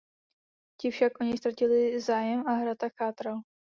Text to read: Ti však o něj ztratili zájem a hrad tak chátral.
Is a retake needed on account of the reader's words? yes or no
no